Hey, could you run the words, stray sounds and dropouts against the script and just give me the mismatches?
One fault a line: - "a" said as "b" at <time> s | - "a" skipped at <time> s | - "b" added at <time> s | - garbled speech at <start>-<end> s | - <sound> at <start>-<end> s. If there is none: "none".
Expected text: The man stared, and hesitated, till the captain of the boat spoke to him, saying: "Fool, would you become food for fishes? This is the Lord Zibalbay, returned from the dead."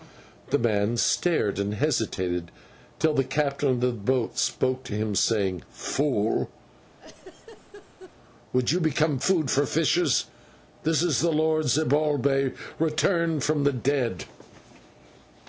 - laugh at 6.9-8.2 s